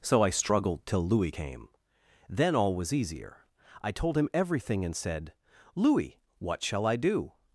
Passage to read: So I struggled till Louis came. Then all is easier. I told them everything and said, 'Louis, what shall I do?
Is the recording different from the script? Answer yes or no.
yes